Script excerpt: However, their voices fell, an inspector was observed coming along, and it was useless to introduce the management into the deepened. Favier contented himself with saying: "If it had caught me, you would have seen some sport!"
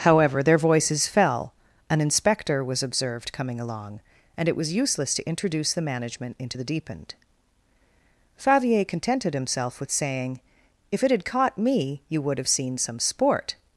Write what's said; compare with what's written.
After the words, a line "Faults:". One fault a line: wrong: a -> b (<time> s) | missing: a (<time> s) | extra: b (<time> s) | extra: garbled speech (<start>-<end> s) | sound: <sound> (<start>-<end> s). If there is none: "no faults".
However, their voices fell, an inspector was observed coming along, and it was useless to introduce the management into the deepened. Favier contented himself with saying: "If it had caught me, you would have seen some sport!"
Faults:
no faults